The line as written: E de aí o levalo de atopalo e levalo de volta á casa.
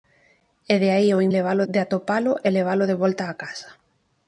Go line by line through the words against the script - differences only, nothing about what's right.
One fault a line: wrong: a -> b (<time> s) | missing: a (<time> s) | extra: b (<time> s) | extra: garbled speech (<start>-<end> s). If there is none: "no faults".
no faults